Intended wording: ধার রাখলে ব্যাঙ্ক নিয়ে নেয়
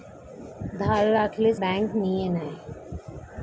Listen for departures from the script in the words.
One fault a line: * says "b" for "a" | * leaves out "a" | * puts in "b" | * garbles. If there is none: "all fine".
all fine